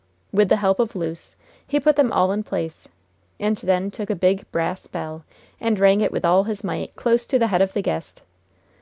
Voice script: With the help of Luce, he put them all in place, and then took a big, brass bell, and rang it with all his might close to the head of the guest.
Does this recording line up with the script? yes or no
yes